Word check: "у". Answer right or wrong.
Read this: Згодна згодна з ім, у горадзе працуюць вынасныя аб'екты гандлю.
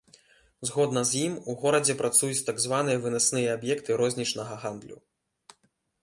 right